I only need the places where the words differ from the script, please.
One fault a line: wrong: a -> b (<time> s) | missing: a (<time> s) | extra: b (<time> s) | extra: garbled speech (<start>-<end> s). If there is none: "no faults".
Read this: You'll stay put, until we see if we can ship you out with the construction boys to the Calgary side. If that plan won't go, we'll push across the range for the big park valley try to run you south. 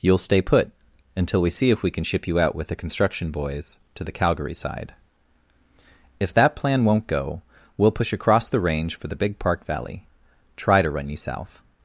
no faults